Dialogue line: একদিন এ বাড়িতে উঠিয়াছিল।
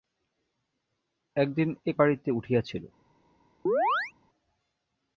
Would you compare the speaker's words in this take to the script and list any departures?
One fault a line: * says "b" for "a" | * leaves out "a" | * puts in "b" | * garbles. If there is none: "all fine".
all fine